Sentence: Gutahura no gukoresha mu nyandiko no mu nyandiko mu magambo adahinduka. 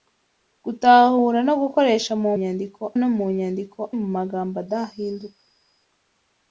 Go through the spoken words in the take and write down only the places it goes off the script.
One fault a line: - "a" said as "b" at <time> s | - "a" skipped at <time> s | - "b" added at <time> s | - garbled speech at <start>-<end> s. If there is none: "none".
none